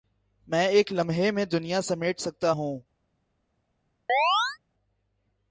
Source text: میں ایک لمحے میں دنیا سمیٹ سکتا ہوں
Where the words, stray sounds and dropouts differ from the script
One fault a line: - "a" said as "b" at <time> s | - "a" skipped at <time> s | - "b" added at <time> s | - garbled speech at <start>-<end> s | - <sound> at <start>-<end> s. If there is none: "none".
- chirp at 4.1-4.6 s